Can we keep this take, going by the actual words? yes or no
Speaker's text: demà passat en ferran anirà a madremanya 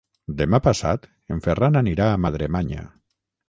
yes